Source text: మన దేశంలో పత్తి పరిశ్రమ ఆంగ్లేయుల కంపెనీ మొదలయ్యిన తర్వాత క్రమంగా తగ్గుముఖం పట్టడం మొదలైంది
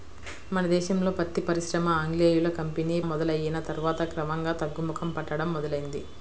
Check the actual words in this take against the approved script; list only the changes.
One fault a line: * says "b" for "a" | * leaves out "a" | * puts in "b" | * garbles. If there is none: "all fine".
all fine